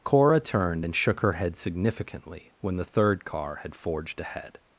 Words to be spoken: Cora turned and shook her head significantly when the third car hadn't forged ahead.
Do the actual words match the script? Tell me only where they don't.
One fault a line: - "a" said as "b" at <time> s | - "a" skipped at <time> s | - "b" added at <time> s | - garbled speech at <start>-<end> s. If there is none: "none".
- "hadn't" said as "had" at 3.6 s